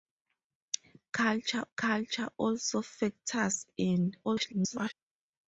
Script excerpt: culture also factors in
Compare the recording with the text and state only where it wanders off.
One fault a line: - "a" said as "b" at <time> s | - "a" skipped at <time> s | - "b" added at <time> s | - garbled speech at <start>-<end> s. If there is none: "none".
- "culture" added at 1.7 s
- garbled speech at 4.2-4.9 s